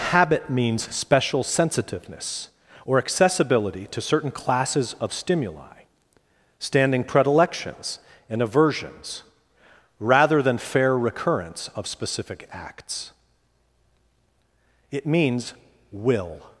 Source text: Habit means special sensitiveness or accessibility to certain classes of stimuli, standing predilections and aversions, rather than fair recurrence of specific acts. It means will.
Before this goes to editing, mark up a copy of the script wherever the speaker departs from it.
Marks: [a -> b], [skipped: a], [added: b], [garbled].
Habit means special sensitiveness or accessibility to certain classes of stimuli, standing predilections and aversions, rather than fair recurrence of specific acts. It means will.